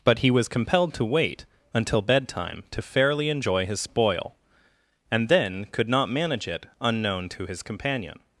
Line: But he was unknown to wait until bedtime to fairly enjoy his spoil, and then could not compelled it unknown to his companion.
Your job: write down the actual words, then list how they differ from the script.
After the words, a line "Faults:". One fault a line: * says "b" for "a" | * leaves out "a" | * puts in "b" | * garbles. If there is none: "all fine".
But he was compelled to wait until bedtime to fairly enjoy his spoil, and then could not manage it unknown to his companion.
Faults:
* says "compelled" for "unknown"
* says "manage" for "compelled"